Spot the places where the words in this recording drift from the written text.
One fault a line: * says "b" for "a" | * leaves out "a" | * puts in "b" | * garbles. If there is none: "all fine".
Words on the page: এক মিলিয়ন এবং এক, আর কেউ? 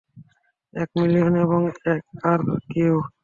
all fine